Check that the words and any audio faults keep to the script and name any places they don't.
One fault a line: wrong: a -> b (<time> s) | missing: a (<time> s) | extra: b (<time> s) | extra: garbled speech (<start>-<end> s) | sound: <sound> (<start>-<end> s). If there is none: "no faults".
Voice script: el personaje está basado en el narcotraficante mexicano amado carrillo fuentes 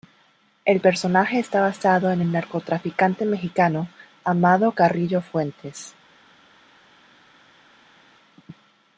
no faults